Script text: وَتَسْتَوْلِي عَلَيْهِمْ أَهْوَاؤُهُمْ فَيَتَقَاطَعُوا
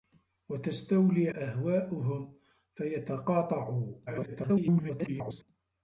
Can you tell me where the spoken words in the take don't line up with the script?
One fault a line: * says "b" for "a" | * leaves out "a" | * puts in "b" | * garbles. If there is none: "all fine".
* leaves out "عَلَيْهِمْ"
* garbles